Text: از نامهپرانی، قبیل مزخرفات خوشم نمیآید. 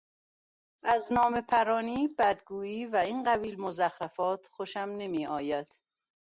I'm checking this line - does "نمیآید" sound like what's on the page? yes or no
yes